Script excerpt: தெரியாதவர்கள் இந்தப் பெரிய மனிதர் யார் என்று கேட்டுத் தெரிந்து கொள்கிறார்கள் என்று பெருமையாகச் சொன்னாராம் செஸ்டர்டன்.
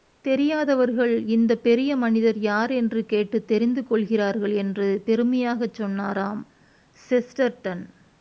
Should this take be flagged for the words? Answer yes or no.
no